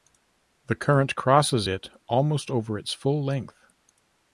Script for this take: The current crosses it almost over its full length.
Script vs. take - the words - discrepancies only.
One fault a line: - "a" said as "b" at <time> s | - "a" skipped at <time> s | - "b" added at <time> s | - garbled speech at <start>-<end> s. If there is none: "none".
none